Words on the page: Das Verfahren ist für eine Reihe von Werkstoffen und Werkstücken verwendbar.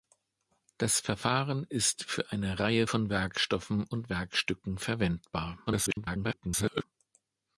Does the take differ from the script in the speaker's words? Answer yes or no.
yes